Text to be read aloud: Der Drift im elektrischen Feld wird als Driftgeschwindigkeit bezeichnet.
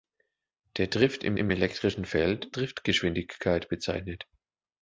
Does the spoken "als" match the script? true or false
false